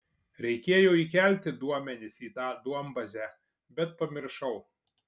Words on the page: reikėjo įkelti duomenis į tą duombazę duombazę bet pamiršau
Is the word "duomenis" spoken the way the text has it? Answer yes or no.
yes